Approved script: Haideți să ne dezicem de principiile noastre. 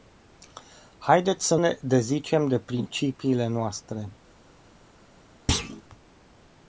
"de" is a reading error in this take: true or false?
false